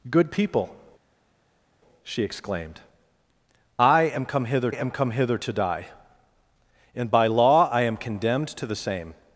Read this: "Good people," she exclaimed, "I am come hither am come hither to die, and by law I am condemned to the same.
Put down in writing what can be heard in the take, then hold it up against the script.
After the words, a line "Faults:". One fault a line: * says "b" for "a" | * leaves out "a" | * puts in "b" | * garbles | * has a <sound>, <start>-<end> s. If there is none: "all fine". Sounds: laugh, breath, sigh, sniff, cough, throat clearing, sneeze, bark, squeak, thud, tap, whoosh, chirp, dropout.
"Good people," she exclaimed, "I am come hither am come hither to die, and by law I am condemned to the same.
Faults:
all fine